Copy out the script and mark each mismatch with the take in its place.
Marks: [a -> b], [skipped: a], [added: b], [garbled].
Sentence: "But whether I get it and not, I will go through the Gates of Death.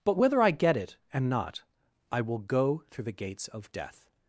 "But whether I get it and not, I will go through the Gates of Death.